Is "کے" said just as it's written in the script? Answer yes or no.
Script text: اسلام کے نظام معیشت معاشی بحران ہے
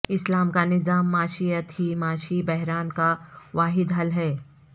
no